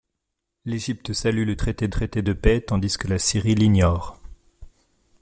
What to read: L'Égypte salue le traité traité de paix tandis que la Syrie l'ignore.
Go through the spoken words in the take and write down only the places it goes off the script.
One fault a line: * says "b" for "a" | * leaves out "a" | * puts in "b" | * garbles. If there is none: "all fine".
all fine